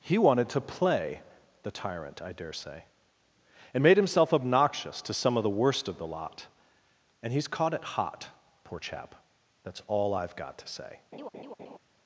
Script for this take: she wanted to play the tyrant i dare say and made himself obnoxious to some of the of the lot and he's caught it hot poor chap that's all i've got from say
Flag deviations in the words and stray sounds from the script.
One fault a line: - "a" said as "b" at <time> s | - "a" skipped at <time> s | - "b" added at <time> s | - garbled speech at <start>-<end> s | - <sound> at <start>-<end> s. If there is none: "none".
- "she" said as "he" at 0.0 s
- "worst" added at 5.5 s
- "from" said as "to" at 10.6 s
- laugh at 11.1-11.8 s